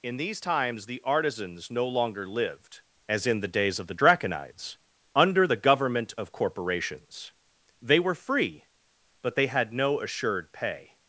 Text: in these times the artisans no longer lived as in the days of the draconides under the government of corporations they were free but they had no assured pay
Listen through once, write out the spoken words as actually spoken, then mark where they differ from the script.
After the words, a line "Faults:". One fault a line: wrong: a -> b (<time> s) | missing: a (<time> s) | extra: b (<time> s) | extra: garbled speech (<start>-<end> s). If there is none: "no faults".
in these times the artisans no longer lived as in the days of the draconides under the government of corporations they were free but they had no assured pay
Faults:
no faults